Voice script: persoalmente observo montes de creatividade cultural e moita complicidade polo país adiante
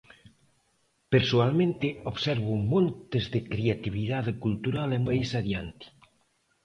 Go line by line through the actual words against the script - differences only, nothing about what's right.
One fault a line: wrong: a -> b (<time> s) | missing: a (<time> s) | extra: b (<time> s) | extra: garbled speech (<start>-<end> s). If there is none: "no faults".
missing: moita complicidade polo (5.0 s)